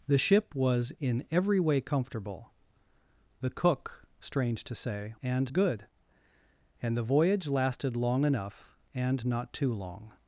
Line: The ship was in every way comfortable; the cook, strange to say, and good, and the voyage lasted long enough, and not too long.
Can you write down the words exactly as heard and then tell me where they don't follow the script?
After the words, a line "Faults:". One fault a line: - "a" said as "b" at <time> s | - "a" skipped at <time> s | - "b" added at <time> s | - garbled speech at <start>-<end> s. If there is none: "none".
The ship was in every way comfortable; the cook, strange to say, and good, and the voyage lasted long enough, and not too long.
Faults:
none